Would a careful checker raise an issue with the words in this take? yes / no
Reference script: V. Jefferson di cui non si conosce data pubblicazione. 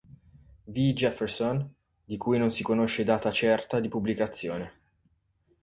yes